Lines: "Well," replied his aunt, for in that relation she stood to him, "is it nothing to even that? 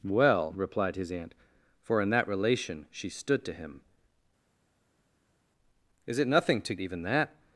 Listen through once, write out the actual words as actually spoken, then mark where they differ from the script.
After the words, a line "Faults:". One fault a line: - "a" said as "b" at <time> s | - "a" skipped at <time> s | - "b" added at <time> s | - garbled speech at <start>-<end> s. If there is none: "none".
"Well," replied his aunt, for in that relation she stood to him, "is it nothing to even that?
Faults:
none